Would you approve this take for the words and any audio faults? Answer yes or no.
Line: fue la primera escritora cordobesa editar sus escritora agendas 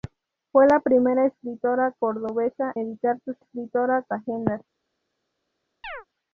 no